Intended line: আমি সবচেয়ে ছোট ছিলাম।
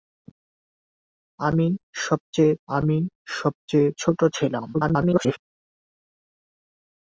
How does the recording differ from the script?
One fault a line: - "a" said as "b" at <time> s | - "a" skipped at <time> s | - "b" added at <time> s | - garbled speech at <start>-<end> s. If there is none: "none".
- "আমি সবচেয়ে" added at 2.7 s
- garbled speech at 4.7-5.4 s